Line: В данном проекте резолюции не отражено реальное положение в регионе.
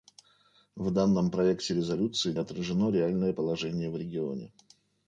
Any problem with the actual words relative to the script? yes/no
yes